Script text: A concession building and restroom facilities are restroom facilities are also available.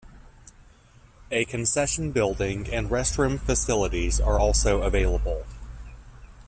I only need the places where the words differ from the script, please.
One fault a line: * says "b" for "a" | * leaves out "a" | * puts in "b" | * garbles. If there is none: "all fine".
* leaves out "restroom facilities are"